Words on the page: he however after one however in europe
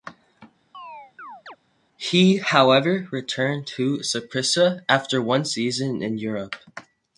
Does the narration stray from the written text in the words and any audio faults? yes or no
yes